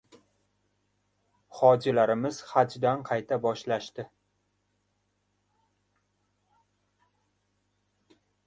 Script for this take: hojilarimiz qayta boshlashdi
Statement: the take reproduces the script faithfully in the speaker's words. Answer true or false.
false